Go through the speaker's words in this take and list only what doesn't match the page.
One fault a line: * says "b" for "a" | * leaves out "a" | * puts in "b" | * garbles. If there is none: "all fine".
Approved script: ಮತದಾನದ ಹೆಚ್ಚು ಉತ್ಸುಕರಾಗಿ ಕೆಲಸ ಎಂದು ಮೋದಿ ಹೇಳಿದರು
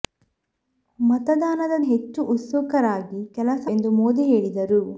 all fine